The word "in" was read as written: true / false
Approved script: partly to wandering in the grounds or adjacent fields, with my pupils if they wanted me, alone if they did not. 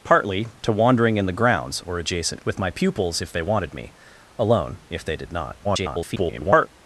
true